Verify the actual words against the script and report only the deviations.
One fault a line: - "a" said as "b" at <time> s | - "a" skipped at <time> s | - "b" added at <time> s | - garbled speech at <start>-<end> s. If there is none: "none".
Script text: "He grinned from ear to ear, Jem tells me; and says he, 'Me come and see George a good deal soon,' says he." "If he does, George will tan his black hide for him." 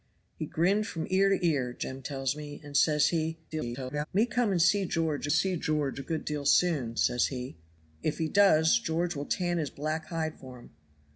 - garbled speech at 3.5-4.1 s
- "see George" added at 5.3 s